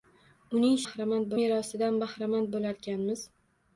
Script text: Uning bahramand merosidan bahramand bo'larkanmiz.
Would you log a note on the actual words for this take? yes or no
no